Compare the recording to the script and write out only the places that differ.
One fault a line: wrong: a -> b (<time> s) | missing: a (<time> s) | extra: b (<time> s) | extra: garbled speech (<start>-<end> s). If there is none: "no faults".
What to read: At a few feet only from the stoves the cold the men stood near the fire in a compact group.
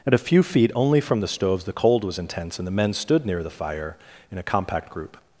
extra: was intense and (2.0 s)